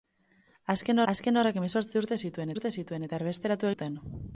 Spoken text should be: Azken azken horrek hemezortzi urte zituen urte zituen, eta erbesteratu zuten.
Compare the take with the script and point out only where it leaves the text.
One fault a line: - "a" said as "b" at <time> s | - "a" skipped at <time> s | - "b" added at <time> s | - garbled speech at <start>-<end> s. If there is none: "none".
none